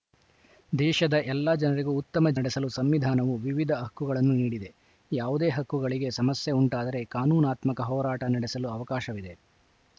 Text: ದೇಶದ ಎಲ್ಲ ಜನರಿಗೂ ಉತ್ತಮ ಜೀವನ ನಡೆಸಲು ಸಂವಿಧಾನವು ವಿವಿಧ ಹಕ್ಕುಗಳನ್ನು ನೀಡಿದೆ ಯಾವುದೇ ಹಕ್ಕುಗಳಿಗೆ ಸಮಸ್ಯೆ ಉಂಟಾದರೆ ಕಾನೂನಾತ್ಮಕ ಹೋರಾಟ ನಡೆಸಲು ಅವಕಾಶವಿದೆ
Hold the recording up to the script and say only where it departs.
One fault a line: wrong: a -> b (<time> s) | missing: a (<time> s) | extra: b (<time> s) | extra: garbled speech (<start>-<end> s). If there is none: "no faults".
missing: ಜೀವನ (2.3 s)